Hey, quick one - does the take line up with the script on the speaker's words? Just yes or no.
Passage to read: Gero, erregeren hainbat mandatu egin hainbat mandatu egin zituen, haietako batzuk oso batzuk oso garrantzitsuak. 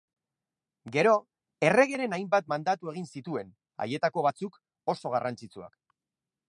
no